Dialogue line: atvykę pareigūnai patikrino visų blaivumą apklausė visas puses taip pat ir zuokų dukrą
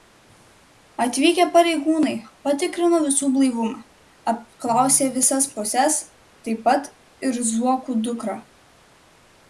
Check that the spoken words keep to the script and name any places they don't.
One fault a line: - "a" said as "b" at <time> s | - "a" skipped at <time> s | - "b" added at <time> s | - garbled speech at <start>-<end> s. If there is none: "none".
none